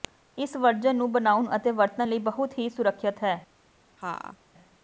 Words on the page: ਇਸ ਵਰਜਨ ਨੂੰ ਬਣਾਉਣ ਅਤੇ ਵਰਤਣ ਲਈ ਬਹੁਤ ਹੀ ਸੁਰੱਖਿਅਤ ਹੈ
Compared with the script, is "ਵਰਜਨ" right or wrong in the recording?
right